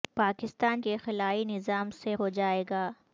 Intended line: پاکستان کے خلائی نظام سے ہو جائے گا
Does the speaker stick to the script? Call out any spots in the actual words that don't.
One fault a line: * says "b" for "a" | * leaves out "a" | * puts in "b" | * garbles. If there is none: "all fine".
all fine